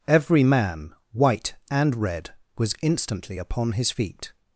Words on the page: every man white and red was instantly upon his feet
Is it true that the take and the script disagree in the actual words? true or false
false